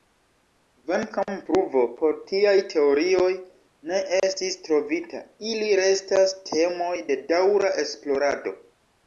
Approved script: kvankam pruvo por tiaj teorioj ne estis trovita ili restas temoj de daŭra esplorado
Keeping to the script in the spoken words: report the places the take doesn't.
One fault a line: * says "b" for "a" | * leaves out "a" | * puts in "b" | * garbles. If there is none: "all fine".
all fine